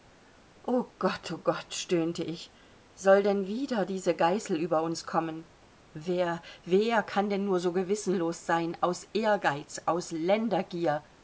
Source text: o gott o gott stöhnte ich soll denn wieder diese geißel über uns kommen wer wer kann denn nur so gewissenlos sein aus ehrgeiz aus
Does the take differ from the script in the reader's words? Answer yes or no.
no